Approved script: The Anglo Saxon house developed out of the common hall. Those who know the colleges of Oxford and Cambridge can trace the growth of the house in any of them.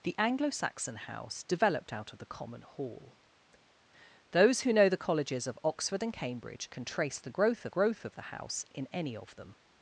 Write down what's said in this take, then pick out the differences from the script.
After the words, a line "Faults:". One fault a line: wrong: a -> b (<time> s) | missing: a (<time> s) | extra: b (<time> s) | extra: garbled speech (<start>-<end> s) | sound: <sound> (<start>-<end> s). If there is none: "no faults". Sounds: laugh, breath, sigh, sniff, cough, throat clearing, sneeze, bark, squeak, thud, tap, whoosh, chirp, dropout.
The Anglo Saxon house developed out of the common hall. Those who know the colleges of Oxford and Cambridge can trace the growth of growth of the house in any of them.
Faults:
extra: growth of (7.7 s)